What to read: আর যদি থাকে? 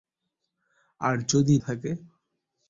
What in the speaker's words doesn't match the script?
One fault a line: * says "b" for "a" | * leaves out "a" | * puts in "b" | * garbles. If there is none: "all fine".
all fine